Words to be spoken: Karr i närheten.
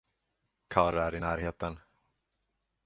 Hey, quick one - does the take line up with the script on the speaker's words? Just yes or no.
no